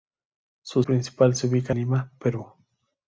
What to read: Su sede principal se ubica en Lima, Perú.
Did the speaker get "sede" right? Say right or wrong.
wrong